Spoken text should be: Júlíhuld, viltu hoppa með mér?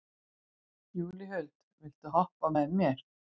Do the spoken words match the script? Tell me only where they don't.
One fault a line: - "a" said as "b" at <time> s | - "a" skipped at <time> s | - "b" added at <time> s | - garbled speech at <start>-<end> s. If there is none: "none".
none